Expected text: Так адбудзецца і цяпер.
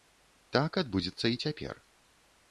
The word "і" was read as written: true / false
true